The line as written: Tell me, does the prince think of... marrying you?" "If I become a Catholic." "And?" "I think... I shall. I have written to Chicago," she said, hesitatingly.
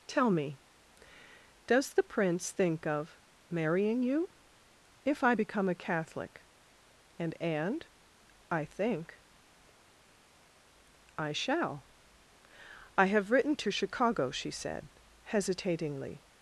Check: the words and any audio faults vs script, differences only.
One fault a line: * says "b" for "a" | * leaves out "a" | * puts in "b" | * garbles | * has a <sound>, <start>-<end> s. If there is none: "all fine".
* puts in "and"